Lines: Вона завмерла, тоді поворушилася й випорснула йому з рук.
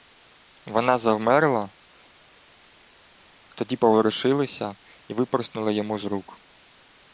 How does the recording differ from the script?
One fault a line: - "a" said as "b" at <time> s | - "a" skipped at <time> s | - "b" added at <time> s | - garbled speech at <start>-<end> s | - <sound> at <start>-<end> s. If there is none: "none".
none